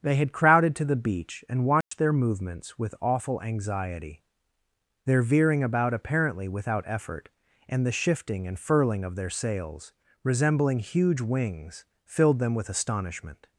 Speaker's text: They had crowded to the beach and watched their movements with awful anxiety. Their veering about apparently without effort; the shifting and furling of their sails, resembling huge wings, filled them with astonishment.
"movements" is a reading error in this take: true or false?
false